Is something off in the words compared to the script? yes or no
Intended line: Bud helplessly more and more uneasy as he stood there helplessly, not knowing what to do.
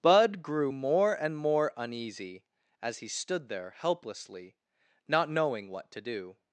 yes